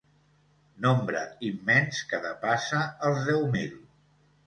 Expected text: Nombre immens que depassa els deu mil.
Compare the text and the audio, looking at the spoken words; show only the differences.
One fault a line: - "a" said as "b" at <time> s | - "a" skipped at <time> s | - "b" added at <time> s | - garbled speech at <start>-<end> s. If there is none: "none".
none